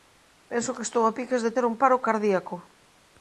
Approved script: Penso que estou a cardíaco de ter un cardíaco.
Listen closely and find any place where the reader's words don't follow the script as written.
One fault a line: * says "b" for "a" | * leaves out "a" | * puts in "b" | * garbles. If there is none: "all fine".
* says "piques" for "cardíaco"
* puts in "paro"